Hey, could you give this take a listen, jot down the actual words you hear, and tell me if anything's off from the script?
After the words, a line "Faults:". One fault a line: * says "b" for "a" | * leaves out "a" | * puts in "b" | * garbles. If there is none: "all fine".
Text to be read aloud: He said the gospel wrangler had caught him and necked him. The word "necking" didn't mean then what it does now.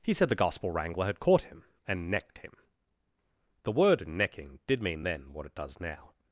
He said the gospel wrangler had caught him and necked him. The word "necking" did mean then what it does now.
Faults:
* says "did" for "didn't"